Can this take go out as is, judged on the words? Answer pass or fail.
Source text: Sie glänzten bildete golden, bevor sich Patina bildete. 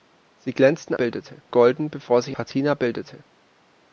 pass